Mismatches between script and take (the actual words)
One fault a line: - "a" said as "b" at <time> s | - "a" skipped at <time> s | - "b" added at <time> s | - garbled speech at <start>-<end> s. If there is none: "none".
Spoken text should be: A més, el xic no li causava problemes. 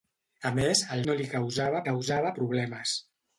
- "xic" skipped at 1.0 s
- "causava" added at 1.8 s